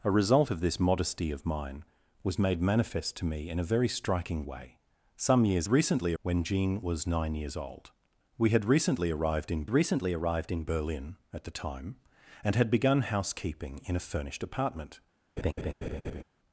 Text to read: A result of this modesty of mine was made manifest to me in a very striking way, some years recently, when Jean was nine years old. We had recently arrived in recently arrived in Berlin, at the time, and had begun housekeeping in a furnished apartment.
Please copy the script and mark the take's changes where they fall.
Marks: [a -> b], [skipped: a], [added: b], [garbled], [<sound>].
A result of this modesty of mine was made manifest to me in a very striking way, some years recently, when Jean was nine years old. We had recently arrived in recently arrived in Berlin, at the time, and had begun housekeeping in a furnished apartment. [laugh]